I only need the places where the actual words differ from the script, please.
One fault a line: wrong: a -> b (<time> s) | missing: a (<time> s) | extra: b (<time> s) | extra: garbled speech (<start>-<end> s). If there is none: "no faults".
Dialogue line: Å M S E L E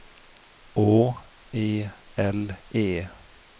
missing: M S (1.1 s)